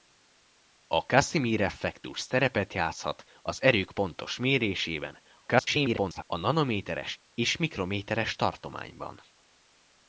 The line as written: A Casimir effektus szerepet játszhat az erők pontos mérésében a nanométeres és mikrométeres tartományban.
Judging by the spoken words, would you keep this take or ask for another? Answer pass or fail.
fail